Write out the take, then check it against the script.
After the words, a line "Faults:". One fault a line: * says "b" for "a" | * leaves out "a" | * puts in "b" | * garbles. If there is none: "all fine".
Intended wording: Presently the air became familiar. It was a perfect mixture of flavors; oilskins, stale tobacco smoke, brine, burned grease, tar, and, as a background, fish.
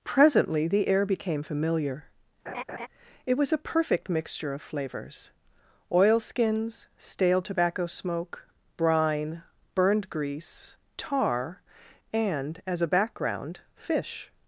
Presently the air became familiar. It was a perfect mixture of flavors; oilskins, stale tobacco smoke, brine, burned grease, tar, and, as a background, fish.
Faults:
all fine